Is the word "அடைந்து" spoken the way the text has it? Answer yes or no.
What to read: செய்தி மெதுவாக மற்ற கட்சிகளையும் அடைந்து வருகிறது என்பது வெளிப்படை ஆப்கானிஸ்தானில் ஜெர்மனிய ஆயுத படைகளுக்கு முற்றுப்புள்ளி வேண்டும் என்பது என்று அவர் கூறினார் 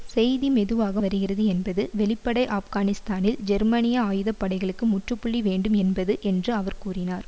no